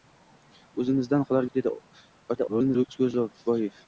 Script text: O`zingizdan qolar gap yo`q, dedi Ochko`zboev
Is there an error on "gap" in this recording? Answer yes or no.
yes